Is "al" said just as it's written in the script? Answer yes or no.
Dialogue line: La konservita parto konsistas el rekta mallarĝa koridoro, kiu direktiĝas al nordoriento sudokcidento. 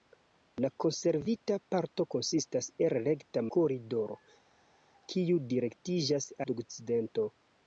no